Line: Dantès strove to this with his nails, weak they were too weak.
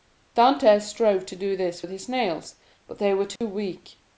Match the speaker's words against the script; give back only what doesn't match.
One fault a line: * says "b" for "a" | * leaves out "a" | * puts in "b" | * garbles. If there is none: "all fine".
* puts in "do"
* says "but" for "weak"